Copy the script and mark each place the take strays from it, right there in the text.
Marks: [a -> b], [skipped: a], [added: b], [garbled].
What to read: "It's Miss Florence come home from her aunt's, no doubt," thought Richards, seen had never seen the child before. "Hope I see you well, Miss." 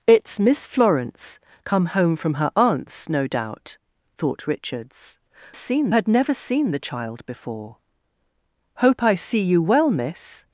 "It's Miss Florence come home from her aunt's, no doubt," thought Richards, seen had never seen the child before. "Hope I see you well, Miss."